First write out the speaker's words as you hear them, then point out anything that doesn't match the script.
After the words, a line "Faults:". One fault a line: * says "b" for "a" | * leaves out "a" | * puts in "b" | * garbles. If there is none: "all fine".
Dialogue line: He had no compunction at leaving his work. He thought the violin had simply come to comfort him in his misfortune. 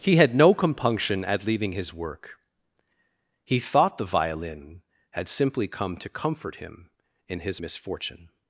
He had no compunction at leaving his work. He thought the violin had simply come to comfort him in his misfortune.
Faults:
all fine